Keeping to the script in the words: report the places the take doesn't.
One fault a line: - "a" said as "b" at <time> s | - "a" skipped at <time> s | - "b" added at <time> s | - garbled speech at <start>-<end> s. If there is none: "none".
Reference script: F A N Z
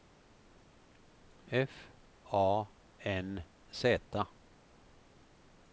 none